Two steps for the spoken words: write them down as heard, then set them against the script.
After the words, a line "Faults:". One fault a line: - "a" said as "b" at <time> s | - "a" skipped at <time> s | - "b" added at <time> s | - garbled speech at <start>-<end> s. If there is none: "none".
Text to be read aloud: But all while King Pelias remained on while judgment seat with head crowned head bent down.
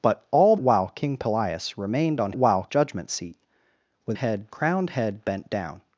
But all while King Pelias remained on while judgment seat with head crowned head bent down.
Faults:
none